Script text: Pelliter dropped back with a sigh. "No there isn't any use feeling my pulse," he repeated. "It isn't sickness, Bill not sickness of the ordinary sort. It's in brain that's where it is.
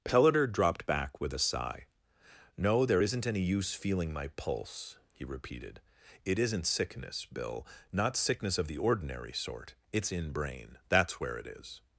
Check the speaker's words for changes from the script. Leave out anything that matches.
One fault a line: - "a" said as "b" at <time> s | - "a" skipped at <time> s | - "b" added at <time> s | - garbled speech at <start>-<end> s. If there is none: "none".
none